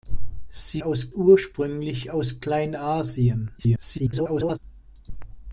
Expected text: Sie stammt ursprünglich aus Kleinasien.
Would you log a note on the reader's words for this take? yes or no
yes